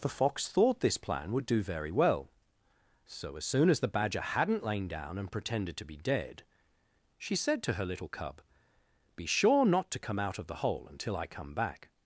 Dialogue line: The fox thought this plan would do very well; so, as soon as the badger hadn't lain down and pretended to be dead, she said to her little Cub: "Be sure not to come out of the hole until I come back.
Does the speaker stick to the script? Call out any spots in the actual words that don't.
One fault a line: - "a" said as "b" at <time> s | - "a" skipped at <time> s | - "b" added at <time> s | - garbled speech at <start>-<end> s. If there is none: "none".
none